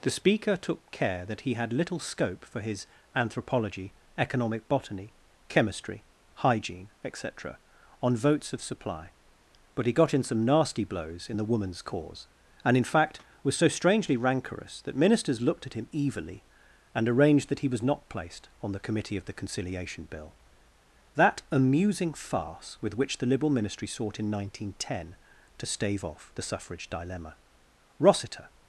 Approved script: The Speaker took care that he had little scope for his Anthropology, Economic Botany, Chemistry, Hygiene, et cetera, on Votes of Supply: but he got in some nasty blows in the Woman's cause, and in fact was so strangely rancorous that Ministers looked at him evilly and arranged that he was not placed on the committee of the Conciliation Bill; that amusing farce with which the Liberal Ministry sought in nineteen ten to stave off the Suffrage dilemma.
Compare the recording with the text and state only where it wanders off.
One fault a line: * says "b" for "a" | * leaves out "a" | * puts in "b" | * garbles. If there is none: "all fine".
* puts in "Rossiter"